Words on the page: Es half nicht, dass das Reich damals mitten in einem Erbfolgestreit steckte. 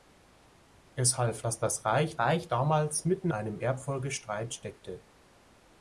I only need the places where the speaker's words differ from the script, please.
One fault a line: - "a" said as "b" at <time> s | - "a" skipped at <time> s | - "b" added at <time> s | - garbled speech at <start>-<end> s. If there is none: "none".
- "nicht" skipped at 1.4 s
- "Reich" added at 2.2 s
- "in" skipped at 3.3 s